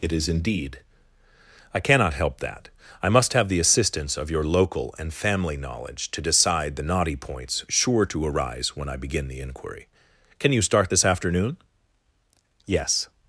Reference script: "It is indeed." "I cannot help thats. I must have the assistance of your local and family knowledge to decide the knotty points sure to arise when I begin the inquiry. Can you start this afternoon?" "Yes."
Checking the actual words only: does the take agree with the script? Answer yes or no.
no